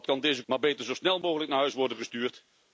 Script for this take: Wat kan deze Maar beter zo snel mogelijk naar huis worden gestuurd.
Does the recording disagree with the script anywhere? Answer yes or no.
no